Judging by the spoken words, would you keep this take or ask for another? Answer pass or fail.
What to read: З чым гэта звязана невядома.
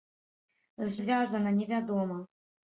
fail